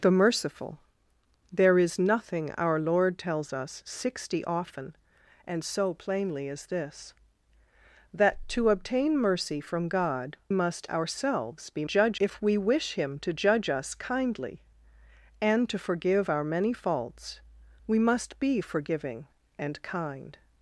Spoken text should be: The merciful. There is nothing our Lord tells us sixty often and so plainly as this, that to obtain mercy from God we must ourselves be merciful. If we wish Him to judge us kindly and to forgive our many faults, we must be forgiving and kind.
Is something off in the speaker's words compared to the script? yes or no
yes